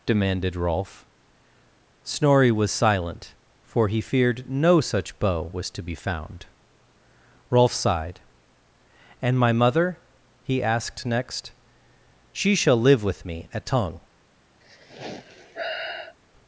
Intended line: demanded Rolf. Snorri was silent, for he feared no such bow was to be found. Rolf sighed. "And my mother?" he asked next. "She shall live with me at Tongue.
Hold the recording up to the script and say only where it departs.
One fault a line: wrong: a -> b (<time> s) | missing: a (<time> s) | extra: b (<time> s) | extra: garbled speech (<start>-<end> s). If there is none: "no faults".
no faults